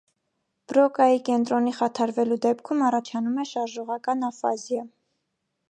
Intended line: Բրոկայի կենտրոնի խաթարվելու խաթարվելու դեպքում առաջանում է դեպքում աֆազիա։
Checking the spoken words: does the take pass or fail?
fail